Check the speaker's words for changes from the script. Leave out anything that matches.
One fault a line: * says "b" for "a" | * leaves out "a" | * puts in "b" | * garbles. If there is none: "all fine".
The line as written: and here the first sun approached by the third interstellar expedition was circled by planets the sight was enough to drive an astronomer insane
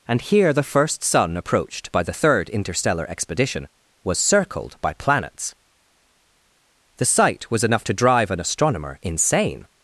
all fine